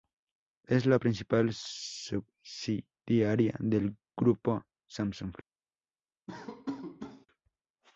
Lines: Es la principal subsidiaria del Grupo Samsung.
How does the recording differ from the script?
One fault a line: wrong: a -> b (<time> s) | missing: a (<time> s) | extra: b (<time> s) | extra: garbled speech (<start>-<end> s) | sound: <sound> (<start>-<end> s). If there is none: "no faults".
sound: laugh (6.3-7.3 s)